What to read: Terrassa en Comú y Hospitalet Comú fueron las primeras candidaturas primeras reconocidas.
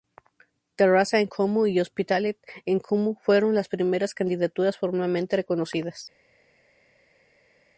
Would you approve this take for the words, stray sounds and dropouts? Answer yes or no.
no